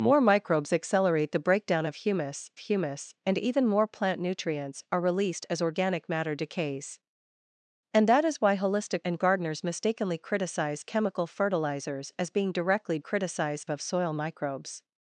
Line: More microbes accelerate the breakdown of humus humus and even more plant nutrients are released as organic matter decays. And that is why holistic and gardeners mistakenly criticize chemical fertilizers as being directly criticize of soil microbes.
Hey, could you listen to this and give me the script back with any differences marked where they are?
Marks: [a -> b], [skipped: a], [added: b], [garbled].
More microbes accelerate the breakdown of humus humus and even more plant nutrients are released as organic matter decays. And that is why holistic and gardeners mistakenly criticize chemical fertilizers as being directly criticize of soil microbes.